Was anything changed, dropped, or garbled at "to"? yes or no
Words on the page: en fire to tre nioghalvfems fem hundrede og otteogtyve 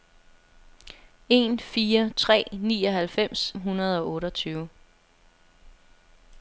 yes